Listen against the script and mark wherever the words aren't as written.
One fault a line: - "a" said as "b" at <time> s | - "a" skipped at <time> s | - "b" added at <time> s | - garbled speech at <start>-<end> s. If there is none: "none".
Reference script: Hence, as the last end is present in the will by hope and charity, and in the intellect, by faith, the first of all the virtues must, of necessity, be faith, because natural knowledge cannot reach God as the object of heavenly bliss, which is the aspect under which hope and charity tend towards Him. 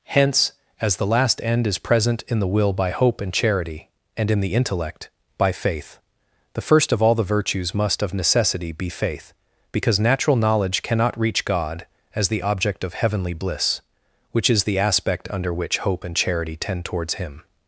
none